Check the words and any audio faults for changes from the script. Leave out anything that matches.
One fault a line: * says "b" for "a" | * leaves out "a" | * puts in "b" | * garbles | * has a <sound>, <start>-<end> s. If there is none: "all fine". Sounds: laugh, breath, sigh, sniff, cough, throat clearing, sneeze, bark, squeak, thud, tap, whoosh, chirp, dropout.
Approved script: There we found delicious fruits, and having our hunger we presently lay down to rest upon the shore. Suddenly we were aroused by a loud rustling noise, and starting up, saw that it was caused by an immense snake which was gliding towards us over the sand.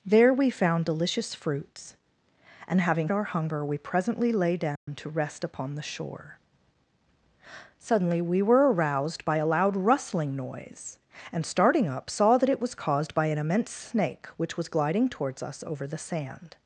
* has a dropout, 4.8-4.9 s